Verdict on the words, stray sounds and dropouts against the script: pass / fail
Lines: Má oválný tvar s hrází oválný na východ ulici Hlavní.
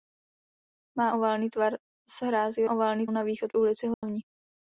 fail